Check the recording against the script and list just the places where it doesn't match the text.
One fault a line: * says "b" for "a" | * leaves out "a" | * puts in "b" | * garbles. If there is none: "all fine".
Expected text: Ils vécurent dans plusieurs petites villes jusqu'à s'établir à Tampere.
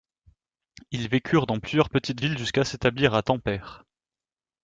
all fine